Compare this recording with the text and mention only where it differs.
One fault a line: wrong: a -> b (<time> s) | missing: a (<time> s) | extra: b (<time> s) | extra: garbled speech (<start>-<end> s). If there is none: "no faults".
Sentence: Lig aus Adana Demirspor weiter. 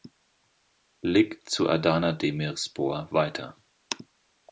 wrong: aus -> zu (1.5 s)